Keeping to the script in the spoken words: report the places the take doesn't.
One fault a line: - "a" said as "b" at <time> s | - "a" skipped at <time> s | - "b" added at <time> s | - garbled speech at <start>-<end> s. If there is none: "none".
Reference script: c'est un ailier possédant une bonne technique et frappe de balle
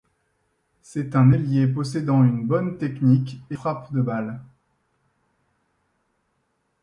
none